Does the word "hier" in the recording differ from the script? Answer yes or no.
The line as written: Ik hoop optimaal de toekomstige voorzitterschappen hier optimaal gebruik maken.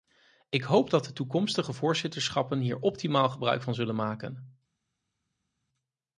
no